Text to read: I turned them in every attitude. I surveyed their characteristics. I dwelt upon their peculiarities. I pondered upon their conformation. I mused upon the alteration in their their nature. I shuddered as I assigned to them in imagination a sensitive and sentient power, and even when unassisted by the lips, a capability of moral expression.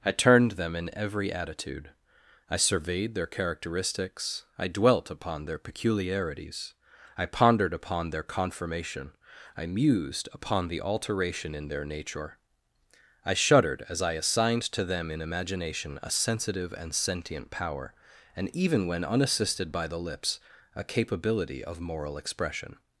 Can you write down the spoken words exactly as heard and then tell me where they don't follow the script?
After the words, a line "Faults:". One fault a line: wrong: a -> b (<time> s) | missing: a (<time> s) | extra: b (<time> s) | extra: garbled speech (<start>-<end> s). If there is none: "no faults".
I turned them in every attitude. I surveyed their characteristics. I dwelt upon their peculiarities. I pondered upon their conformation. I mused upon the alteration in their nature. I shuddered as I assigned to them in imagination a sensitive and sentient power, and even when unassisted by the lips, a capability of moral expression.
Faults:
missing: their (11.8 s)